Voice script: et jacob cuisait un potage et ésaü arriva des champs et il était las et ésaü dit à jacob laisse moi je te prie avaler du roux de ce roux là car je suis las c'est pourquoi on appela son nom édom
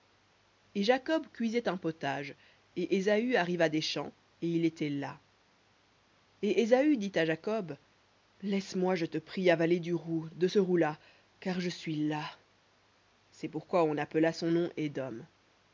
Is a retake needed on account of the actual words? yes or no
no